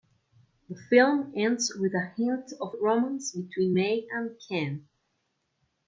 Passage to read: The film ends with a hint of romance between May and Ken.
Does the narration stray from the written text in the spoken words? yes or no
no